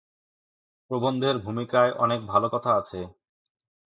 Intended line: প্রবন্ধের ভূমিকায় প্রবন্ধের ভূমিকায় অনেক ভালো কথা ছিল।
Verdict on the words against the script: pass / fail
fail